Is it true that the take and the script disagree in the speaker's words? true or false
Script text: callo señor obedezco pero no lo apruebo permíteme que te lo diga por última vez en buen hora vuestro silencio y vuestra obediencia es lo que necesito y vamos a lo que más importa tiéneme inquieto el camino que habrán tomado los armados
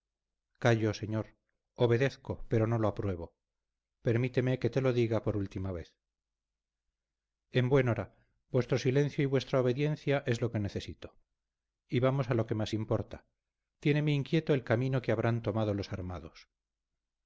false